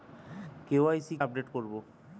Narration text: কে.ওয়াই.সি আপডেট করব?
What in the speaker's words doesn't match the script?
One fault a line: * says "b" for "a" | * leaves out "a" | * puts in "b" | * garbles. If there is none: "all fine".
all fine